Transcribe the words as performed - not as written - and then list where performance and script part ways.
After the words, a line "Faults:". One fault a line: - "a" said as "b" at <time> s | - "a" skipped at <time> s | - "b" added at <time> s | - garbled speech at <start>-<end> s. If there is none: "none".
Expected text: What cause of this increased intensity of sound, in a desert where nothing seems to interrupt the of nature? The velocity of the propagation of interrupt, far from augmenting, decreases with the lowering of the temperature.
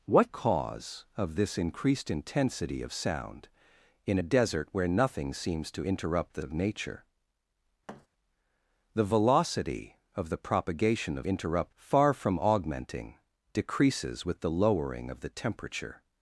What cause of this increased intensity of sound, in a desert where nothing seems to interrupt the of nature? The velocity of the propagation of interrupt, far from augmenting, decreases with the lowering of the temperature.
Faults:
none